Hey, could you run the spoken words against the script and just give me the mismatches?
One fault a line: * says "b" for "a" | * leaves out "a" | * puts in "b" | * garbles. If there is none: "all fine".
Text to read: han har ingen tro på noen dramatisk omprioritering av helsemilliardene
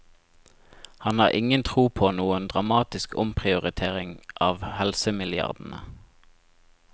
all fine